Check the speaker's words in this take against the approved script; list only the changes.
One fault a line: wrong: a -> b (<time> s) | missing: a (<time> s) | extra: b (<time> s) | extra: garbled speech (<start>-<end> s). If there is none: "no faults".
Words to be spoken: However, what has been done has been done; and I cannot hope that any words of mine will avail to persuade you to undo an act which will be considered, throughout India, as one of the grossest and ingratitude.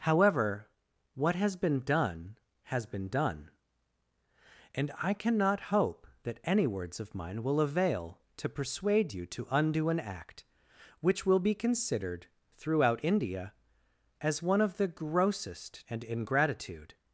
no faults